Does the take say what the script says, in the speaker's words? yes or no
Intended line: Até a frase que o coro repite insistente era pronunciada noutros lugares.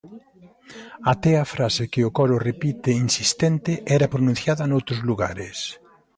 yes